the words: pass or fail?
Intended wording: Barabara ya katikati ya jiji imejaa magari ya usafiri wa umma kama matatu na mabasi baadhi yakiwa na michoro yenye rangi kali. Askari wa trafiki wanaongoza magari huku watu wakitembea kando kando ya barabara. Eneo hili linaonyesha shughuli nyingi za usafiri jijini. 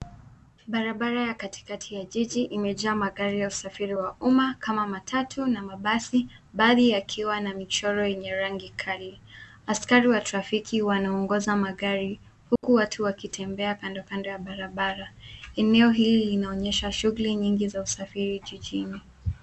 pass